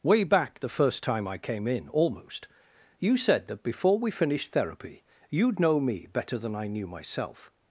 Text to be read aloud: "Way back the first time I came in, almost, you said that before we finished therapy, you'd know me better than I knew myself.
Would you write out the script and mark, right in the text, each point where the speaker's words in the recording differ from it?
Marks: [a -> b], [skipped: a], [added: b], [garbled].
"Way back the first time I came in, almost, you said that before we finished therapy, you'd know me better than I knew myself.